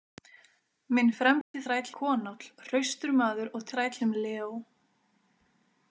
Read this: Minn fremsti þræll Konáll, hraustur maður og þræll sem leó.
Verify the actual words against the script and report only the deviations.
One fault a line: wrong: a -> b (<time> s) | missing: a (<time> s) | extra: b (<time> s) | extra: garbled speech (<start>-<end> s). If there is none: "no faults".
no faults